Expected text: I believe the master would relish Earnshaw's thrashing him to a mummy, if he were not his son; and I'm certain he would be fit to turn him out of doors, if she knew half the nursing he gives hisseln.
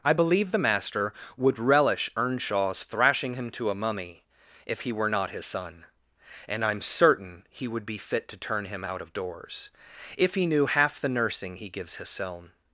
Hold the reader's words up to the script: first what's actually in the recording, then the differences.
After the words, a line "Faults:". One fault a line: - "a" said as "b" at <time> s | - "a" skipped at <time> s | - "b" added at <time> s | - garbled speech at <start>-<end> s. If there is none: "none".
I believe the master would relish Earnshaw's thrashing him to a mummy, if he were not his son; and I'm certain he would be fit to turn him out of doors, if he knew half the nursing he gives hisseln.
Faults:
- "she" said as "he" at 10.3 s